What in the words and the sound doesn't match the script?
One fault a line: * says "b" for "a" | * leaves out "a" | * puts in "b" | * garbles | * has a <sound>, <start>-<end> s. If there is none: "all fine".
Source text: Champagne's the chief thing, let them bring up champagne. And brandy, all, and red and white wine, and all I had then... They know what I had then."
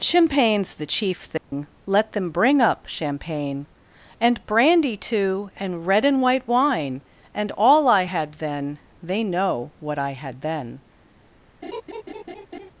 * has a dropout, 1.4-1.5 s
* says "too" for "all"
* has a laugh, 11.6-12.7 s